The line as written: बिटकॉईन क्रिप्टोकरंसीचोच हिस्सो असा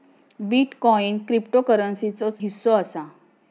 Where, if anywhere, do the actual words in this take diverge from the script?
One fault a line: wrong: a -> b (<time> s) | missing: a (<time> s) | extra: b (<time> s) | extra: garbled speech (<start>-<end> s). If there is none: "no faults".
no faults